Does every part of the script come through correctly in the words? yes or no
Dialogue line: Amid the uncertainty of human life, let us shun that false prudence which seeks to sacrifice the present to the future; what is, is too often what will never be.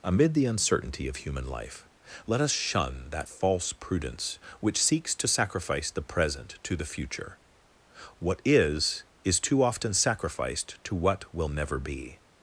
no